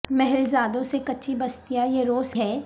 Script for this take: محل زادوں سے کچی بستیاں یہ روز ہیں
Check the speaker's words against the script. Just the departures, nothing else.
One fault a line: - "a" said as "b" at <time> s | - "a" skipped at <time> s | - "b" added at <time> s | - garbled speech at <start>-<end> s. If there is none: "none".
none